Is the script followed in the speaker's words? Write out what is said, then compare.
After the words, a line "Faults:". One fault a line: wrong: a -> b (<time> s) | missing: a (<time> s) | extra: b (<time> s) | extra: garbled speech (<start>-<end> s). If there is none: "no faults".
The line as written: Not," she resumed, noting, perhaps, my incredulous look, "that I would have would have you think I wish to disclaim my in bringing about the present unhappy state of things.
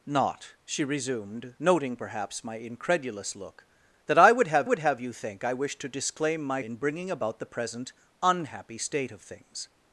Not," she resumed, noting, perhaps, my incredulous look, "that I would have would have you think I wish to disclaim my in bringing about the present unhappy state of things.
Faults:
no faults